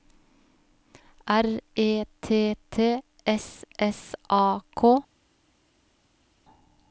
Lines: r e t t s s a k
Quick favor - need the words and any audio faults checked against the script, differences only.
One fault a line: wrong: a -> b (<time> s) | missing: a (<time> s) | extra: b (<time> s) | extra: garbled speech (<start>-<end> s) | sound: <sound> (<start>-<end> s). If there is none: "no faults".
no faults